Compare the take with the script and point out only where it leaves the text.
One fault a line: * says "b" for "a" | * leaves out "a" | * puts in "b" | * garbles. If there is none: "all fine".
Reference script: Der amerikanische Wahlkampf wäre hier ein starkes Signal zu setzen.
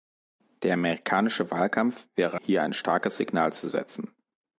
all fine